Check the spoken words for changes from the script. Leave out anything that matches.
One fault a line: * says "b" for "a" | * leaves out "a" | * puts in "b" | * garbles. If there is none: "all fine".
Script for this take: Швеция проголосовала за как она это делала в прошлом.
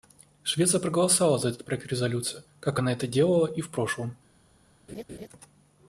* puts in "этот проект резолюции"
* puts in "и"